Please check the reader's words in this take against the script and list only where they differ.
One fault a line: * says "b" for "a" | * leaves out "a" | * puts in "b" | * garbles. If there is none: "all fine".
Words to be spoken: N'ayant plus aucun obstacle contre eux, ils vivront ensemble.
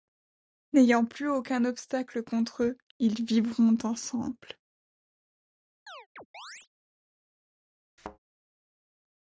all fine